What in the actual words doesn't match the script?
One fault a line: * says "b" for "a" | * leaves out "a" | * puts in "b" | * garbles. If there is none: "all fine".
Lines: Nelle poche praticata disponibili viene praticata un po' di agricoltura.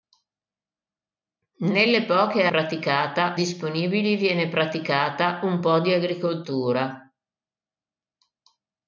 all fine